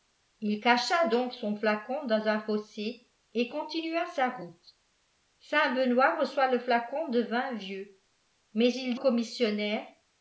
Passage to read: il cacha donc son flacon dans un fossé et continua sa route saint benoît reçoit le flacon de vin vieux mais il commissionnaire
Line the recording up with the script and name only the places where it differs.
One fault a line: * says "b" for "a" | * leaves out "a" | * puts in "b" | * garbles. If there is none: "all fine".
all fine